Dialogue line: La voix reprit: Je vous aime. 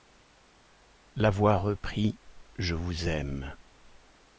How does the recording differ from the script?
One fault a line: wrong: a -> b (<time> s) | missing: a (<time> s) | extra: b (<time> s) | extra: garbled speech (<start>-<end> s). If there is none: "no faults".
no faults